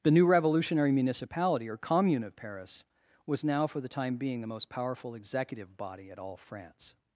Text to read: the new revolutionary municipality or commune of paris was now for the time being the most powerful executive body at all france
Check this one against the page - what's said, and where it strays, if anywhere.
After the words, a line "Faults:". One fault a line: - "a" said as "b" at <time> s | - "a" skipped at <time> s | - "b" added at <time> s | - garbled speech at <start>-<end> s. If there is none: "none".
the new revolutionary municipality or commune of paris was now for the time being the most powerful executive body at all france
Faults:
none